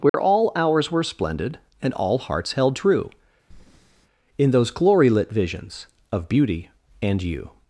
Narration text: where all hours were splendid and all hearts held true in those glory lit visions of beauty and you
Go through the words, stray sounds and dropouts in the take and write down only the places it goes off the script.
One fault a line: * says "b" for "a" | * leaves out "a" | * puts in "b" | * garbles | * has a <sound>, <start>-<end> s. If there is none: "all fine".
* has a dropout, 0.1-0.1 s
* has a breath, 3.5-4.1 s